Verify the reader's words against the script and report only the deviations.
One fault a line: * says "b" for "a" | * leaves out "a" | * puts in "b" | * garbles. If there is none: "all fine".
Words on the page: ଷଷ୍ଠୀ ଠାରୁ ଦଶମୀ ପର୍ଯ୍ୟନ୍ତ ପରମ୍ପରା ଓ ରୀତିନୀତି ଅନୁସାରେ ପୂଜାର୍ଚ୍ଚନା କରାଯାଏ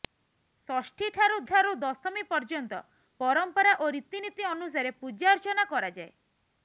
* puts in "ଠାରୁ"